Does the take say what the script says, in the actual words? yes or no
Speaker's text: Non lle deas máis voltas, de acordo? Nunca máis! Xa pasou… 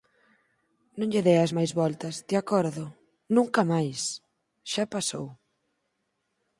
yes